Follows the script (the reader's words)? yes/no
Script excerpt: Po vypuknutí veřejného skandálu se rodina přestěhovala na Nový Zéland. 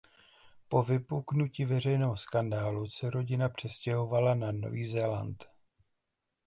yes